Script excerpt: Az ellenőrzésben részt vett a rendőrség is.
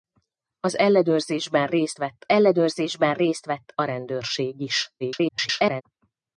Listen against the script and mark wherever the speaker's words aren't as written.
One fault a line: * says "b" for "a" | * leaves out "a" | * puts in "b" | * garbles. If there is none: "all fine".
* puts in "ellenőrzésben részt vett"
* garbles